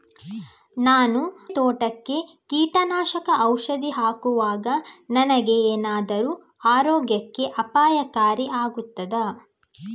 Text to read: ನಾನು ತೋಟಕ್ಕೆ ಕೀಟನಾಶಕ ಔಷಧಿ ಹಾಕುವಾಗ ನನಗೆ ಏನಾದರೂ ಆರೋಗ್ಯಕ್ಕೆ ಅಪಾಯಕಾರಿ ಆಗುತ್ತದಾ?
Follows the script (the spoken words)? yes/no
yes